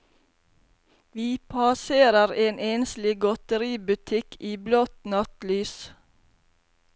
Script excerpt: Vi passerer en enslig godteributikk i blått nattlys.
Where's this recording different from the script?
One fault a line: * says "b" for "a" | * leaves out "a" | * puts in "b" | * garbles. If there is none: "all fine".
all fine